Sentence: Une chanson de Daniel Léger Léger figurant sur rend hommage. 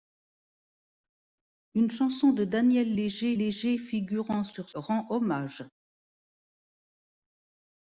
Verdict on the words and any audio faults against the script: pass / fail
pass